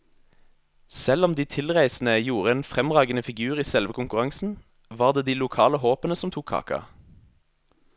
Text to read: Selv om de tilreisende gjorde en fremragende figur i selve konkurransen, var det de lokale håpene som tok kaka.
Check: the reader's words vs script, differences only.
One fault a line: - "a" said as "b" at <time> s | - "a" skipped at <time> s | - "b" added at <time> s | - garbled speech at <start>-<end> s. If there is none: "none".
none